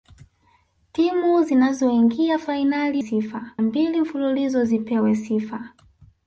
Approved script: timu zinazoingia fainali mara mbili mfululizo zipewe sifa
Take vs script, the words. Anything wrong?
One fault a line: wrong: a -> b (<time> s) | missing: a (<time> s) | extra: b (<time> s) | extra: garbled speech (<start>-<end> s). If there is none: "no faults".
wrong: mara -> sifa (3.0 s)